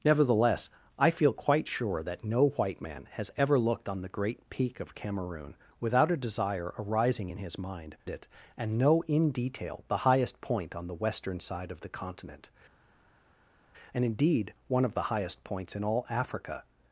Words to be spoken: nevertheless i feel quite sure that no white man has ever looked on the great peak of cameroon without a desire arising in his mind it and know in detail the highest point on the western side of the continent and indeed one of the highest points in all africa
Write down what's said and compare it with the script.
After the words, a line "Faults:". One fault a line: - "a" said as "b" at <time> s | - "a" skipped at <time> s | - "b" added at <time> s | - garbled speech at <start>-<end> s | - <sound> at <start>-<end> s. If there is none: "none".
nevertheless i feel quite sure that no white man has ever looked on the great peak of cameroon without a desire arising in his mind it and know in detail the highest point on the western side of the continent and indeed one of the highest points in all africa
Faults:
none